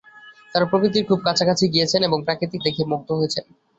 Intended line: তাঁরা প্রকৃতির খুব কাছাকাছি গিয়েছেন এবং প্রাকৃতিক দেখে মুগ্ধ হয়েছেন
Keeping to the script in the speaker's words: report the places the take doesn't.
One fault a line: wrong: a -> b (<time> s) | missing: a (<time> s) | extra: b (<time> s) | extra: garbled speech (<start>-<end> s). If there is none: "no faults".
no faults